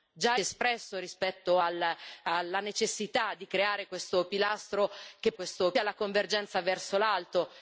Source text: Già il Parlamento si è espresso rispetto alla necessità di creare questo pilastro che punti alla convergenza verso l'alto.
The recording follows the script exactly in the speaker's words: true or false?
false